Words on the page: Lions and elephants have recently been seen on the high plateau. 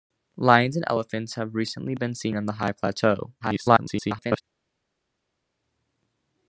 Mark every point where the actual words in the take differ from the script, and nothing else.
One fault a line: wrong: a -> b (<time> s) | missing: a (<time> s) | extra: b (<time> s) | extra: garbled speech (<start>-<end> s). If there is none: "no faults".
extra: garbled speech (3.4-4.4 s)